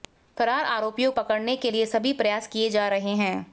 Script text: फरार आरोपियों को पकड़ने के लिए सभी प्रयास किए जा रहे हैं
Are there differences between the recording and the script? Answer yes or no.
yes